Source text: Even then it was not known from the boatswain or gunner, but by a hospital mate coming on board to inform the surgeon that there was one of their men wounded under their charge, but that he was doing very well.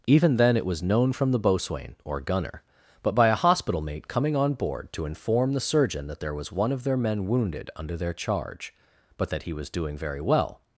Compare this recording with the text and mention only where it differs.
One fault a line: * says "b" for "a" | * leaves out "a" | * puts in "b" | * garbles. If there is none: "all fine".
* leaves out "not"